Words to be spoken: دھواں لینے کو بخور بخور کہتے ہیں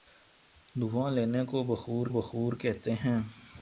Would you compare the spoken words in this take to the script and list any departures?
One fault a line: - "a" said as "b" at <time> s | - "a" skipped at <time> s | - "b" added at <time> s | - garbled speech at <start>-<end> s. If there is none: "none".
none